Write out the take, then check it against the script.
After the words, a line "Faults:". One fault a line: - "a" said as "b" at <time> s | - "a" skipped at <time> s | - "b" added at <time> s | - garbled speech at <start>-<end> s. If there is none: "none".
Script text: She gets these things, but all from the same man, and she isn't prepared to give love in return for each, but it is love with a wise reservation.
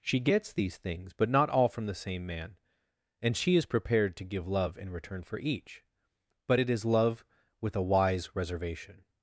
She gets these things, but not all from the same man, and she is prepared to give love in return for each, but it is love with a wise reservation.
Faults:
- "not" added at 1.3 s
- "isn't" said as "is" at 3.5 s